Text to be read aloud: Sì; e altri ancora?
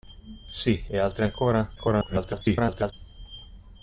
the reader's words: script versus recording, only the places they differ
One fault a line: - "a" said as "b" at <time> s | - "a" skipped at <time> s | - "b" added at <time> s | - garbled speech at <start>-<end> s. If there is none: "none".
- garbled speech at 1.8-2.9 s